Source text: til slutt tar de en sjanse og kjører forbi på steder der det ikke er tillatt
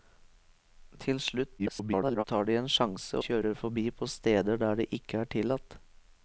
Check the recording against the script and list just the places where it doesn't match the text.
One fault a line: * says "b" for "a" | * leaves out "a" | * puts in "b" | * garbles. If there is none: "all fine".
* garbles
* leaves out "og"